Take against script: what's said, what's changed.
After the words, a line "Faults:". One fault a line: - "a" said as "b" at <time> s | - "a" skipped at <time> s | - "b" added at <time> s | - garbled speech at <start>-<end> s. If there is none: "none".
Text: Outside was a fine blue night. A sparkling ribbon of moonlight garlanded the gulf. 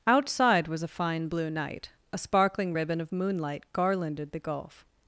Outside was a fine blue night. A sparkling ribbon of moonlight garlanded the gulf.
Faults:
none